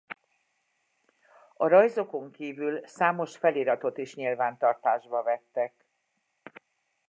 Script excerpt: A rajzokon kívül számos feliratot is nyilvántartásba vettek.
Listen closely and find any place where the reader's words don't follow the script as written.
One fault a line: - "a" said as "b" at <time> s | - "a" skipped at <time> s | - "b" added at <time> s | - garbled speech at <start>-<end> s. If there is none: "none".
none